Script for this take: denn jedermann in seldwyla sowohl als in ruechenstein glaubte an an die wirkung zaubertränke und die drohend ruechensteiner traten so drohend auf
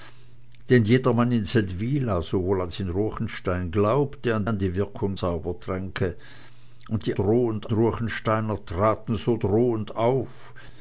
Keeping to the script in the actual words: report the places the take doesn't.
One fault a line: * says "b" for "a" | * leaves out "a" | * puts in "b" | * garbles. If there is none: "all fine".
all fine